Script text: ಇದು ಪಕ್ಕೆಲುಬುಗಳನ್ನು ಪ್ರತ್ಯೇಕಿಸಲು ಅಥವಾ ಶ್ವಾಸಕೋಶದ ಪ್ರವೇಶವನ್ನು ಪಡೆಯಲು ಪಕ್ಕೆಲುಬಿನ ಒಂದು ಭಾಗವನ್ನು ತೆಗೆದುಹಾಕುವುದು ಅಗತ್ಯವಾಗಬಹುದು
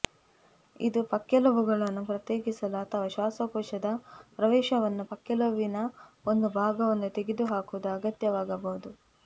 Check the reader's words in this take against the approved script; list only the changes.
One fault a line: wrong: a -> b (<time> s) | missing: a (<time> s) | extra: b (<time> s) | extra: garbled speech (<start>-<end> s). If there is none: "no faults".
missing: ಪಡೆಯಲು (5.0 s)